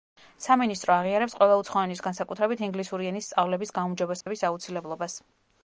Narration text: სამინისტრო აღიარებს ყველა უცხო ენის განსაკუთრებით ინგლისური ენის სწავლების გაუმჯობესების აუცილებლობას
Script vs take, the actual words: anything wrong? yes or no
no